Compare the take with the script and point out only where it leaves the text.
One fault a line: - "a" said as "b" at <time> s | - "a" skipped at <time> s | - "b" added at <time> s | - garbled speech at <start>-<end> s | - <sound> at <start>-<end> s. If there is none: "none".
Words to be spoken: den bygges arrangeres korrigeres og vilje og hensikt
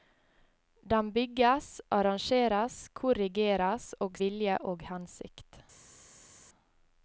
none